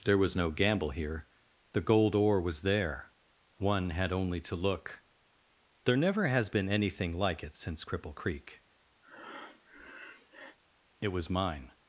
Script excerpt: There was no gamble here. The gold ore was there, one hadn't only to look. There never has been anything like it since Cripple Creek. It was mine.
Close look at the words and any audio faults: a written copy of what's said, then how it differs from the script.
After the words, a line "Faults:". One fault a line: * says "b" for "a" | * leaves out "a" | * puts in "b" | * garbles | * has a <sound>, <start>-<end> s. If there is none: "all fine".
There was no gamble here. The gold ore was there, one had only to look. There never has been anything like it since Cripple Creek. It was mine.
Faults:
* says "had" for "hadn't"
* has a breath, 9.0-10.6 s